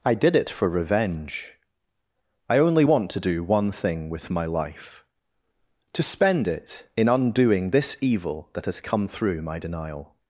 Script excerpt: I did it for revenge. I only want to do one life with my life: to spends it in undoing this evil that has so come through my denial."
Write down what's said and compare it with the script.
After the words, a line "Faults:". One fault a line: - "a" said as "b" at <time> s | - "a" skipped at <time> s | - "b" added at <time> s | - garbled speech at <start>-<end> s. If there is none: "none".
I did it for revenge. I only want to do one thing with my life: to spend it in undoing this evil that has come through my denial."
Faults:
- "life" said as "thing" at 3.7 s
- "spends" said as "spend" at 6.0 s
- "so" skipped at 8.8 s